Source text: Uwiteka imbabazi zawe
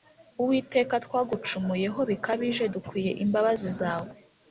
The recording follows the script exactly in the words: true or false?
false